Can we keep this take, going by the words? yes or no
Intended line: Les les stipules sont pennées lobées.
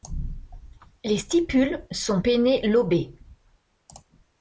no